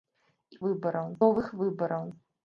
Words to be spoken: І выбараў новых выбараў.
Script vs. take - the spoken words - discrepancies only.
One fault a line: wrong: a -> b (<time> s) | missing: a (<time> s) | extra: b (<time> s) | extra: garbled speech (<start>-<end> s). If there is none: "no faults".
no faults